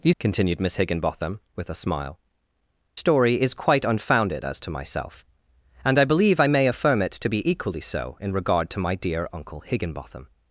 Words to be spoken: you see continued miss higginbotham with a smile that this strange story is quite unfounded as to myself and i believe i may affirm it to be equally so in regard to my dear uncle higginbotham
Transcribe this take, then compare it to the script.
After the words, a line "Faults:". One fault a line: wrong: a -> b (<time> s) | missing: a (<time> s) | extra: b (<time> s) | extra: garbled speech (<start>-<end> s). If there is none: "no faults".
you continued miss higginbotham with a smile story is quite unfounded as to myself and i believe i may affirm it to be equally so in regard to my dear uncle higginbotham
Faults:
missing: see (0.1 s)
missing: that this strange (2.2 s)